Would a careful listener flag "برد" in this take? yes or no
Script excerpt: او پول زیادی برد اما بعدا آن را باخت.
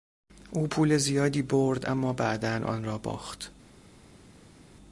no